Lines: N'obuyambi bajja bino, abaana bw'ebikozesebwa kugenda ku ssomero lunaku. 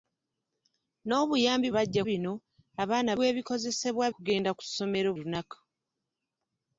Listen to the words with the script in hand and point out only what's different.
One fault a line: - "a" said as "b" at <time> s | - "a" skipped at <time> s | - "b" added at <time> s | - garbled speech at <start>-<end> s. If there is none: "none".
none